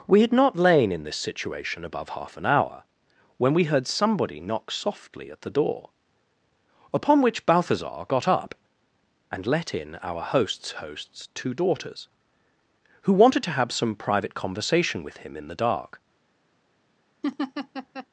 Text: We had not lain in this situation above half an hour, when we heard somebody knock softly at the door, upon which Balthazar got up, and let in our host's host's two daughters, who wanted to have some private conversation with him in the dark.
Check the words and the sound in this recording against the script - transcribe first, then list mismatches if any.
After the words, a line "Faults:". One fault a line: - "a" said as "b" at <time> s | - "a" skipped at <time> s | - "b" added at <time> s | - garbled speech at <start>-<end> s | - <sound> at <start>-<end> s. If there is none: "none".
We had not lain in this situation above half an hour, when we heard somebody knock softly at the door, upon which Balthazar got up, and let in our host's host's two daughters, who wanted to have some private conversation with him in the dark.
Faults:
- laugh at 17.2-18.1 s